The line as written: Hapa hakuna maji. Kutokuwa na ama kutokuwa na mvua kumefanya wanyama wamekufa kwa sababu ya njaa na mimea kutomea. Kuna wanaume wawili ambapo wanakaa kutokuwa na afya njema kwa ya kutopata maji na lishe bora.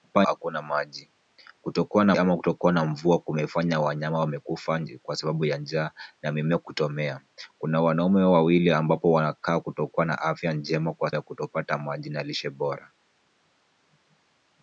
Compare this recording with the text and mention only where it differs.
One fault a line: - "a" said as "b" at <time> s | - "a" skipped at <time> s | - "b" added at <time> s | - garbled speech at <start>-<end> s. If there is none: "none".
none